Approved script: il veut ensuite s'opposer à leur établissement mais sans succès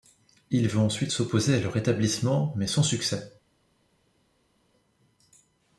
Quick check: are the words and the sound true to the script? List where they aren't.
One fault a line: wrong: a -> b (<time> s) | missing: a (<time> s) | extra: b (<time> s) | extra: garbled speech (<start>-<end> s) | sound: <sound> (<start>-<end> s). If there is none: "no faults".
no faults